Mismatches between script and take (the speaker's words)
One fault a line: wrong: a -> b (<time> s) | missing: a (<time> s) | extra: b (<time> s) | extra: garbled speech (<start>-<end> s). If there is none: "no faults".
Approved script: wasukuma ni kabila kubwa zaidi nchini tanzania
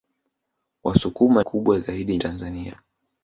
missing: ni kabila (1.4 s)
missing: nchini (2.2 s)